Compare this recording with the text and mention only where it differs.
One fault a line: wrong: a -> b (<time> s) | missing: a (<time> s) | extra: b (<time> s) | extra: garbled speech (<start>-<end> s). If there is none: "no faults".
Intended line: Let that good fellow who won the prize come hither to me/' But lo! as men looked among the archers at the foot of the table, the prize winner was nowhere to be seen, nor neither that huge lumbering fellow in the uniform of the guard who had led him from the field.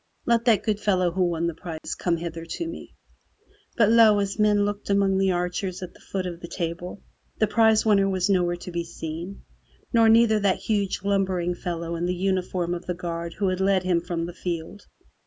no faults